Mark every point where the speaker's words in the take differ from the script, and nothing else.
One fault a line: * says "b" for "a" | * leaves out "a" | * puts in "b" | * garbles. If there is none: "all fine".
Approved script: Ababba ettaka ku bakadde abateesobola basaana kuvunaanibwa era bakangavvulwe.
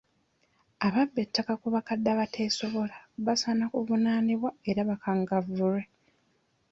all fine